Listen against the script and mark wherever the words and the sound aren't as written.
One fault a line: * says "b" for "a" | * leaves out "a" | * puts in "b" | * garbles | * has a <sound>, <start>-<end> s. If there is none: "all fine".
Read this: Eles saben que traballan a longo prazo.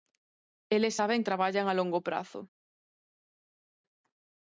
* leaves out "que"